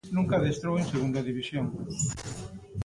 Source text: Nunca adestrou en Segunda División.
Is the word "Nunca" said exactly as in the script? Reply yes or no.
yes